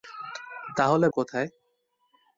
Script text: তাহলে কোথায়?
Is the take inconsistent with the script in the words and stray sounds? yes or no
no